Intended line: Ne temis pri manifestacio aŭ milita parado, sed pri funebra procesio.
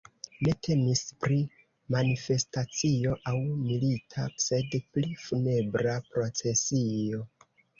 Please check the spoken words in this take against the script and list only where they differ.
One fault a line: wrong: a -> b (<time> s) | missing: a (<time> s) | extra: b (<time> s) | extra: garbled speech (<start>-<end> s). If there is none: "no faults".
missing: parado (4.3 s)